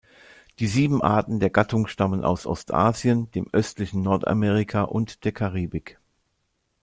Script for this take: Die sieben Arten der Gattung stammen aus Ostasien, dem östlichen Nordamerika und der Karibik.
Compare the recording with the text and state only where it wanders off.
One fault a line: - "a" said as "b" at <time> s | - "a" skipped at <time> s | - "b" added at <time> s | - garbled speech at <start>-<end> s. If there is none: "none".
none